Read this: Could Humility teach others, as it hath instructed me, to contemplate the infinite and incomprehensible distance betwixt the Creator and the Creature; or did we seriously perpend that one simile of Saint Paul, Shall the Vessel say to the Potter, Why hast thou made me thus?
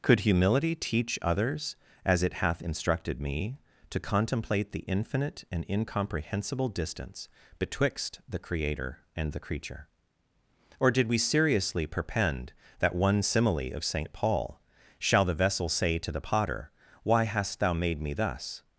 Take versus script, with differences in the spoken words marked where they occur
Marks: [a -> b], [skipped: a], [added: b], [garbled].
Could Humility teach others, as it hath instructed me, to contemplate the infinite and incomprehensible distance betwixt the Creator and the Creature; or did we seriously perpend that one simile of Saint Paul, Shall the Vessel say to the Potter, Why hast thou made me thus?